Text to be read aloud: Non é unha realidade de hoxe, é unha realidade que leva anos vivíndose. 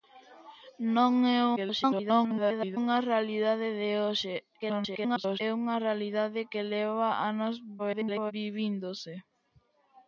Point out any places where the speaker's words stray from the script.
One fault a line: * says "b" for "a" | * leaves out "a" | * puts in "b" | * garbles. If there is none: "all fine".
* garbles
* garbles
* garbles